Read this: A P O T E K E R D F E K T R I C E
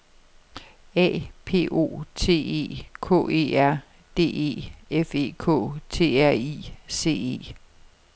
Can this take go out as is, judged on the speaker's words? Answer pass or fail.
fail